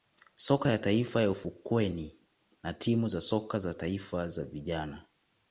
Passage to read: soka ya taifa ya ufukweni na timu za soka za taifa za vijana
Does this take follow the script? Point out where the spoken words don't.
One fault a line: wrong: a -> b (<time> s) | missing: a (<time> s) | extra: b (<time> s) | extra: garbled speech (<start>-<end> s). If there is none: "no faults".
no faults